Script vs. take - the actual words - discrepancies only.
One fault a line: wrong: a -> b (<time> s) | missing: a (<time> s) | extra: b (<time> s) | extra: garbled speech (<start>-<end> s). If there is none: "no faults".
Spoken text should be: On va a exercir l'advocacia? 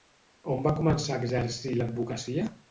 extra: començar (0.8 s)